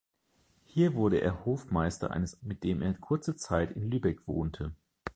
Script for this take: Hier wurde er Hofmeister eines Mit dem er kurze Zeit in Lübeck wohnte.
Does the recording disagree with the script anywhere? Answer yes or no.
no